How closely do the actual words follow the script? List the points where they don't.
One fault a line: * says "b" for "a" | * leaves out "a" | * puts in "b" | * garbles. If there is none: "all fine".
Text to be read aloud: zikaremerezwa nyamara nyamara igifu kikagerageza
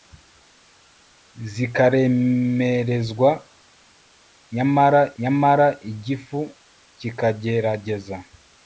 all fine